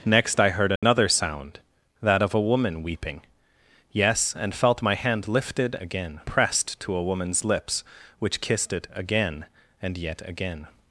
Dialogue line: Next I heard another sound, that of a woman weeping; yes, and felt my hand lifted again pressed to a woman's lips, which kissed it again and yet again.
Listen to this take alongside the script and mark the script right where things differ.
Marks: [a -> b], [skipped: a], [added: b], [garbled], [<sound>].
Next I heard another [dropout] sound, that of a woman weeping; yes, and felt my hand lifted again pressed to a woman's lips, which kissed it again and yet again.